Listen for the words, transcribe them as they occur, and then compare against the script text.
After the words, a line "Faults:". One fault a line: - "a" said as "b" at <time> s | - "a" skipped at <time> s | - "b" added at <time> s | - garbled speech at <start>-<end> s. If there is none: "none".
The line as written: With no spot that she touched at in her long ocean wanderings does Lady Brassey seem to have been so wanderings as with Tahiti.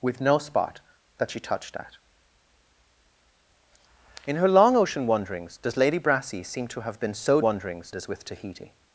With no spot that she touched at in her long ocean wanderings does Lady Brassey seem to have been so wanderings as with Tahiti.
Faults:
none